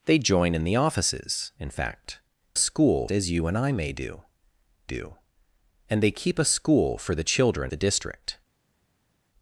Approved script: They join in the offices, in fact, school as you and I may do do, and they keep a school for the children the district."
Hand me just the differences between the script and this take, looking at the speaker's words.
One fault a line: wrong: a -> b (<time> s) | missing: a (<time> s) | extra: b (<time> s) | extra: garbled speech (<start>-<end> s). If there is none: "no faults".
no faults